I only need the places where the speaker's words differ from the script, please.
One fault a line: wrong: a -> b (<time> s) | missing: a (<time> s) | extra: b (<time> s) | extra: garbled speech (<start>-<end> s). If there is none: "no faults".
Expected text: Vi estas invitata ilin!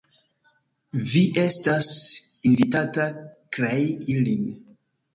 extra: krei (3.6 s)